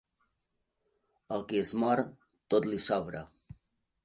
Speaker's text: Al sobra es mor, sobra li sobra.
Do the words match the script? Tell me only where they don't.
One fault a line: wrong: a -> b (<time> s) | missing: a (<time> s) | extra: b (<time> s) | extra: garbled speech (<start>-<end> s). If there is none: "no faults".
wrong: sobra -> qui (1.5 s)
wrong: sobra -> tot (2.5 s)